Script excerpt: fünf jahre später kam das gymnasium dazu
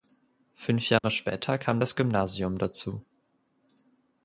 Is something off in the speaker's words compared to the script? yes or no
no